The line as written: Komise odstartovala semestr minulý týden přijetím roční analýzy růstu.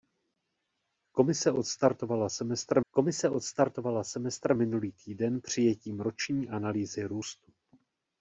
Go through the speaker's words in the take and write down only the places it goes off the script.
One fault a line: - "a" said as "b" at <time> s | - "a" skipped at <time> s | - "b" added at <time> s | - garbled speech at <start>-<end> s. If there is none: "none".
- "komise odstartovala semestr" added at 2.9 s